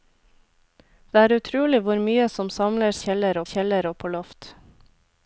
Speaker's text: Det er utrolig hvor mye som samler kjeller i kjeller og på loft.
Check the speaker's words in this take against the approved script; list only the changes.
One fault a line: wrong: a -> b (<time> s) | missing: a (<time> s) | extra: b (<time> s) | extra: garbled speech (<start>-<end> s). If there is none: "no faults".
no faults